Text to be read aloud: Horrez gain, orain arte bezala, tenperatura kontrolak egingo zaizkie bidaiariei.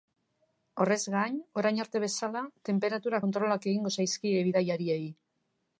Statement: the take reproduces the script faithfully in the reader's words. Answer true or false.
true